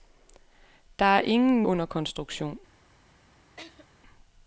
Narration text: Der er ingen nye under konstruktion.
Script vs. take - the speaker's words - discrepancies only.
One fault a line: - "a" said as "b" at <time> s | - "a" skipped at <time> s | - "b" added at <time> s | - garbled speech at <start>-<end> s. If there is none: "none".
- "nye" skipped at 1.6 s